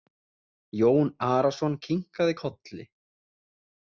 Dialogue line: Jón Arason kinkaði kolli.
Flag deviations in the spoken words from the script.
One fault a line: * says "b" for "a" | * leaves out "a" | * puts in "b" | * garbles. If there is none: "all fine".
all fine